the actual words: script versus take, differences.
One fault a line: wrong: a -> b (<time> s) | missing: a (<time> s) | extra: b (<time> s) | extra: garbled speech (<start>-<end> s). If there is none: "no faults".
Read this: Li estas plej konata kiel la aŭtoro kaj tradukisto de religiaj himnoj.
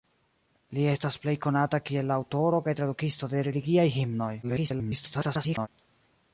extra: garbled speech (4.4-5.7 s)